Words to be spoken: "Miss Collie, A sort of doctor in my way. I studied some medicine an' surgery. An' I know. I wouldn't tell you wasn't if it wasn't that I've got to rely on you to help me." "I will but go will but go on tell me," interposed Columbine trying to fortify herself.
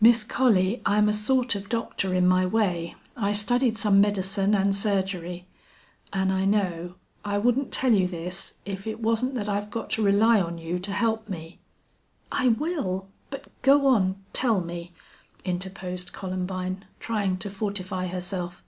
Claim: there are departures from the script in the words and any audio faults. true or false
true